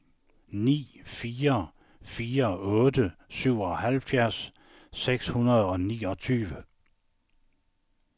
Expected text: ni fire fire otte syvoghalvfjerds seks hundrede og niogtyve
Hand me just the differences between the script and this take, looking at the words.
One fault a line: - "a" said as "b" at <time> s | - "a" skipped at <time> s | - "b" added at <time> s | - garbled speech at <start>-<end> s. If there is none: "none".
none